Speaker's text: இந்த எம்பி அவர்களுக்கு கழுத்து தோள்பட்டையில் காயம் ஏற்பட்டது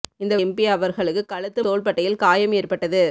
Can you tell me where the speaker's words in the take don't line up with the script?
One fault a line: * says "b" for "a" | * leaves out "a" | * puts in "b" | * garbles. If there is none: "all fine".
all fine